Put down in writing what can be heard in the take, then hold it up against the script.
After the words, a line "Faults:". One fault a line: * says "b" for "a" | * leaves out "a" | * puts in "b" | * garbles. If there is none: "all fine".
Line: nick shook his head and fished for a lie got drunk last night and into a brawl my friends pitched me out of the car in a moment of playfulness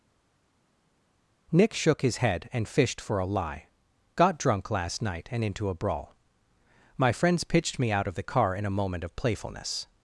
nick shook his head and fished for a lie got drunk last night and into a brawl my friends pitched me out of the car in a moment of playfulness
Faults:
all fine